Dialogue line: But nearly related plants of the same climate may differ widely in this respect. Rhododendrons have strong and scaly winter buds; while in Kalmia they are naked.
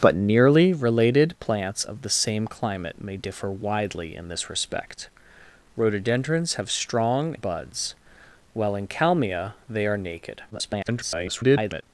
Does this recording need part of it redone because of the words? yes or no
yes